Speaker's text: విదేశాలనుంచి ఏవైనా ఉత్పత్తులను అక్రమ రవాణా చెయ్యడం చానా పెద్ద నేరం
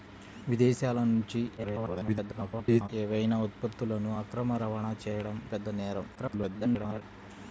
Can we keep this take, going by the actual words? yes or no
no